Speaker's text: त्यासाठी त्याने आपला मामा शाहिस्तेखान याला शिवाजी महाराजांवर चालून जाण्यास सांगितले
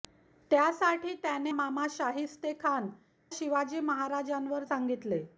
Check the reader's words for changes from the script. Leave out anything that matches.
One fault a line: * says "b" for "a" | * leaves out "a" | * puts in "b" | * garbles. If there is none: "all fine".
* leaves out "आपला"
* leaves out "याला"
* leaves out "चालून जाण्यास"